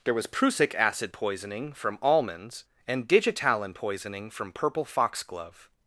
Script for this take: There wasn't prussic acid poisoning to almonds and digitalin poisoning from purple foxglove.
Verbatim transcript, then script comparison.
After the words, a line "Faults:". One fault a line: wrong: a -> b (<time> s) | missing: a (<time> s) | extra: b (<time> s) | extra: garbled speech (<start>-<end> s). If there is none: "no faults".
There was prussic acid poisoning from almonds and digitalin poisoning from purple foxglove.
Faults:
wrong: wasn't -> was (0.1 s)
wrong: to -> from (1.7 s)